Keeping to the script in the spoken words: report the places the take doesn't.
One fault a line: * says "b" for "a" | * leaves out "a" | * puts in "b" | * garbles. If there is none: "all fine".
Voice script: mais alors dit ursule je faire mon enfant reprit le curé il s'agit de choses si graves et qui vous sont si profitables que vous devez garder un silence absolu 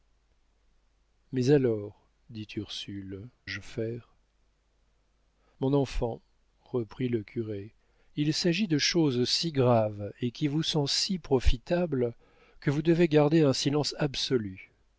all fine